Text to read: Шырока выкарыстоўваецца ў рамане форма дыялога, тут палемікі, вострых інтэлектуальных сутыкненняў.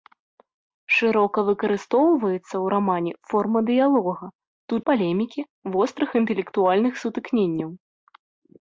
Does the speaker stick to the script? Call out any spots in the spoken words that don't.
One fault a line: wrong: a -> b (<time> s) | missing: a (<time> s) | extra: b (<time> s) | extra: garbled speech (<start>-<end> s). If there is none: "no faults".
no faults